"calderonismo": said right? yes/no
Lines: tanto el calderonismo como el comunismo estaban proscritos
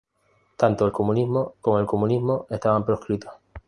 no